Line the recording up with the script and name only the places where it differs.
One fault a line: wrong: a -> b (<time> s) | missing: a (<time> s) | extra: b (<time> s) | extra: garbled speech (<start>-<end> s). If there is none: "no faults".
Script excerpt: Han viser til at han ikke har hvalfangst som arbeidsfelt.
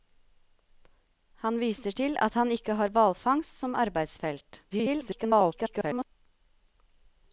extra: garbled speech (4.7-6.1 s)